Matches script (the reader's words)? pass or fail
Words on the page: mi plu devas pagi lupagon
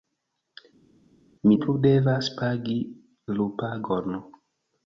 pass